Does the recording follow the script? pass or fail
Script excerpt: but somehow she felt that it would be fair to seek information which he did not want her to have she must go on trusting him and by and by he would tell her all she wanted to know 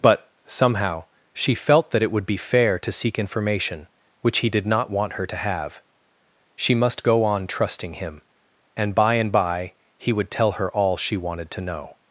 pass